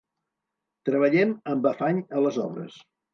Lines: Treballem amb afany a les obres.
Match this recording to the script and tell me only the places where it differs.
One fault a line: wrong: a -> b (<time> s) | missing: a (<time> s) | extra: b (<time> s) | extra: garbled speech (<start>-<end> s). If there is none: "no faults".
no faults